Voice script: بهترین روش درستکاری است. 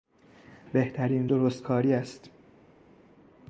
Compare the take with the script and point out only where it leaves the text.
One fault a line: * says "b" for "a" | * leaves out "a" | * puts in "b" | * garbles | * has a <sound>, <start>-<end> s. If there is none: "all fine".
* leaves out "روش"